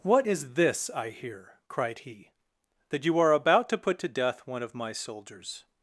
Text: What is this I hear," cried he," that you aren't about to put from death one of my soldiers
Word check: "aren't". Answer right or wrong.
wrong